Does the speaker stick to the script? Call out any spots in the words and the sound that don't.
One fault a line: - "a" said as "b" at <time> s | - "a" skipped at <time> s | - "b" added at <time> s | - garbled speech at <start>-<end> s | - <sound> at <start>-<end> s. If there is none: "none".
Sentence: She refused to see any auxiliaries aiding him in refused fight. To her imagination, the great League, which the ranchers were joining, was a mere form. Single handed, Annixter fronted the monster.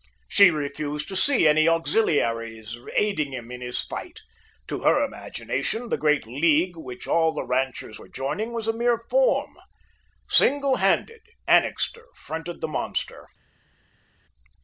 - "refused" said as "his" at 3.6 s
- "all" added at 7.1 s